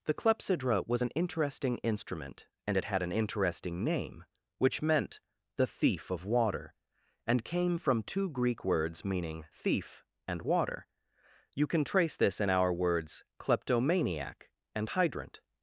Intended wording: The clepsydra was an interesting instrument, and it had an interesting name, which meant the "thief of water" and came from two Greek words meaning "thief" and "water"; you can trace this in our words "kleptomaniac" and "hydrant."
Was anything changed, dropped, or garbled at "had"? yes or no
no